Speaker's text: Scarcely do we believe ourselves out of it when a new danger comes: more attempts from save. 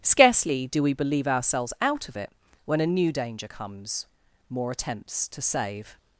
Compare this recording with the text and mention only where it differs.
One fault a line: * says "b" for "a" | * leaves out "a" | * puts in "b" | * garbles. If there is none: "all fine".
* says "to" for "from"